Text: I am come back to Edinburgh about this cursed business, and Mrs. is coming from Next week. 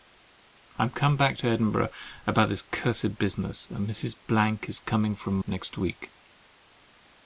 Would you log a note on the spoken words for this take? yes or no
no